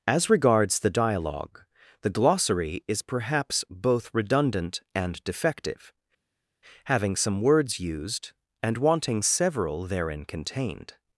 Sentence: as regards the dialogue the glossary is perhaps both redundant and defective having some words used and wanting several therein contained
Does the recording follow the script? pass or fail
pass